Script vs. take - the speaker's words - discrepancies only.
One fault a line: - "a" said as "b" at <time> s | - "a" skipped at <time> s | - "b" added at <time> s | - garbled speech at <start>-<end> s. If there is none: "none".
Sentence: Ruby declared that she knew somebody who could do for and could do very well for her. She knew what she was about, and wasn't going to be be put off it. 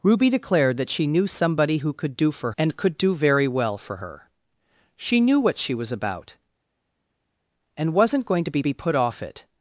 none